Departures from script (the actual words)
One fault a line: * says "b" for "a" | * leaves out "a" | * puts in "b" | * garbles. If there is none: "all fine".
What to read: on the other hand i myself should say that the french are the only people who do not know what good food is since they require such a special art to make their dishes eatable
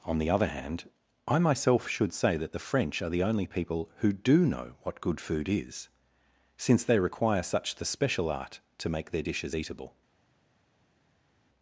* leaves out "not"
* says "the" for "a"